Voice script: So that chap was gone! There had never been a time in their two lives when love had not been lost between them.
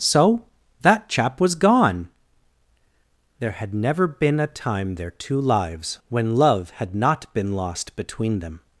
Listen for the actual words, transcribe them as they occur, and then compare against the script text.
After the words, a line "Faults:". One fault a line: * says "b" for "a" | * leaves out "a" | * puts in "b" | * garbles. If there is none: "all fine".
So that chap was gone! There had never been a time their two lives when love had not been lost between them.
Faults:
* leaves out "in"